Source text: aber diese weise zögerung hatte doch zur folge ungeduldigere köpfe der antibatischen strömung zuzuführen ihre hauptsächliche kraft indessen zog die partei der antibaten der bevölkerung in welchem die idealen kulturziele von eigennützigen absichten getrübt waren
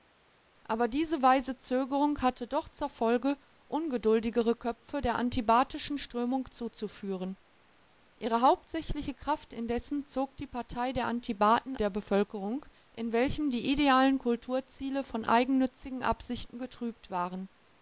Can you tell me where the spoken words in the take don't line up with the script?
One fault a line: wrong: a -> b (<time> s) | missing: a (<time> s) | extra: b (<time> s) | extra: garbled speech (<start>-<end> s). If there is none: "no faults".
no faults